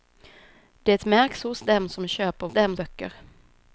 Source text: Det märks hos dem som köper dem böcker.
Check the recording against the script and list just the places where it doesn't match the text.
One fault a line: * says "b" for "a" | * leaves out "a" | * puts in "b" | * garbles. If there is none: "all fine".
all fine